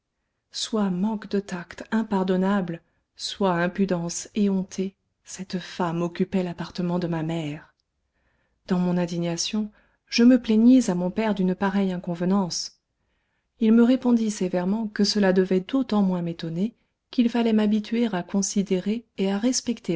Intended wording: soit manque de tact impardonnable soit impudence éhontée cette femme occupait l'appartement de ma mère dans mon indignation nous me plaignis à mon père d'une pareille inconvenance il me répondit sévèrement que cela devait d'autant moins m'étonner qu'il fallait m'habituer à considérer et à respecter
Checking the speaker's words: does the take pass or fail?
fail